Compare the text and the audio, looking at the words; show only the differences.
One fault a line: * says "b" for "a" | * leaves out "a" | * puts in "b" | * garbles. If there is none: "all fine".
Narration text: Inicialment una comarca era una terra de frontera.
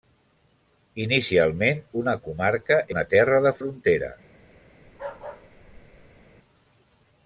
* leaves out "era"